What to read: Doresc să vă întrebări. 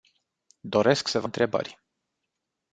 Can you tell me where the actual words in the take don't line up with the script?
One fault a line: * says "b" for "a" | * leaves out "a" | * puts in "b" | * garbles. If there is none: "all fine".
all fine